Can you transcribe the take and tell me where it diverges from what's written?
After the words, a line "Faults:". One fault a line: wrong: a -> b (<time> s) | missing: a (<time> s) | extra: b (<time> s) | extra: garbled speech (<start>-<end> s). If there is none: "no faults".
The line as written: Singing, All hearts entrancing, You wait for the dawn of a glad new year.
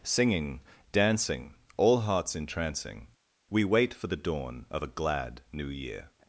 Singing, dancing, All hearts entrancing, We wait for the dawn of a glad new year.
Faults:
extra: dancing (0.9 s)
wrong: You -> We (3.5 s)